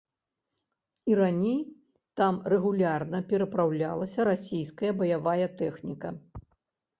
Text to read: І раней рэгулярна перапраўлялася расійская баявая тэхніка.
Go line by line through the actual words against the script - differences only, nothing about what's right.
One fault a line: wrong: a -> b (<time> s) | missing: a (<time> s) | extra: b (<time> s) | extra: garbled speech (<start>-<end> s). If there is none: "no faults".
extra: там (2.2 s)